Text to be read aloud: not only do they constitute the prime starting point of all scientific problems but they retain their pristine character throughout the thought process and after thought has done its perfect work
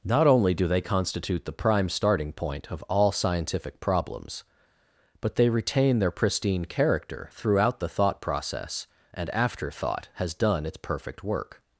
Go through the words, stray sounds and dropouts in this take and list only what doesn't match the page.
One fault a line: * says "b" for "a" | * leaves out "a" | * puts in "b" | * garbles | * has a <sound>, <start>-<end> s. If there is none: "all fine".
all fine